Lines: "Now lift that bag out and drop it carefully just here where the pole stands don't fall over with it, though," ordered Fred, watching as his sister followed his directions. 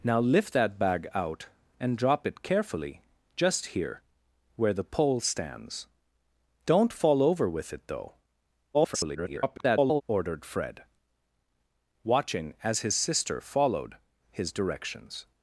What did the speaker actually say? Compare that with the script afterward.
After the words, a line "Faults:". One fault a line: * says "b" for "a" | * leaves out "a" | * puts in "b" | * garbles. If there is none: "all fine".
"Now lift that bag out and drop it carefully just here where the pole stands don't fall over with it, though," [garbled] ordered Fred, watching as his sister followed his directions.
Faults:
* garbles